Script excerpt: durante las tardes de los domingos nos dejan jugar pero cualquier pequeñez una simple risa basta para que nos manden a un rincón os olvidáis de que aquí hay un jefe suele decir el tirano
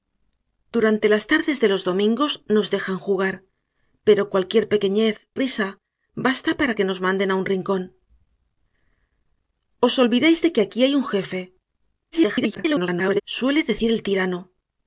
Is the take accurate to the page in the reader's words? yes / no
no